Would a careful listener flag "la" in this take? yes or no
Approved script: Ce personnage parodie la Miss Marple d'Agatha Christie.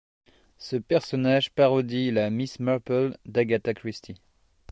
no